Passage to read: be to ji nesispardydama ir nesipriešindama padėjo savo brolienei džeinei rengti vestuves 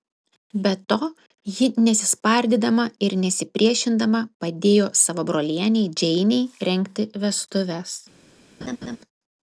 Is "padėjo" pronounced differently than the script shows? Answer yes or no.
no